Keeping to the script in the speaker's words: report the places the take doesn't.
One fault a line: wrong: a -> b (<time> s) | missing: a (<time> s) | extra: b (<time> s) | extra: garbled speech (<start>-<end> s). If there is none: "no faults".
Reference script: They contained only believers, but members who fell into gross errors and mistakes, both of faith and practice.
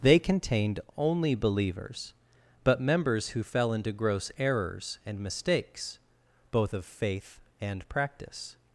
no faults